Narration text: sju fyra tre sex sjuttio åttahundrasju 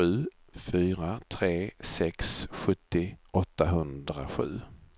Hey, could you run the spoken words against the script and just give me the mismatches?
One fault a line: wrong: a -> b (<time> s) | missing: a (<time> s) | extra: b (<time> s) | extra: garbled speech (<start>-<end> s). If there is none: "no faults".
no faults